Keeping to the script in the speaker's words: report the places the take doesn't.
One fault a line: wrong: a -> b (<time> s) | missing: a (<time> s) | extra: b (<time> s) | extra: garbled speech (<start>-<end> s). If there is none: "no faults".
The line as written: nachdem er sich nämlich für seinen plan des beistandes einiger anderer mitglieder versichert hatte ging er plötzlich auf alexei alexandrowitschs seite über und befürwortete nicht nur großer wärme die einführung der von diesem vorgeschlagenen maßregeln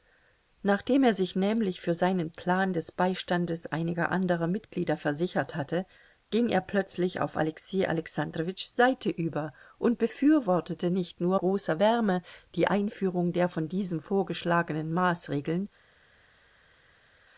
no faults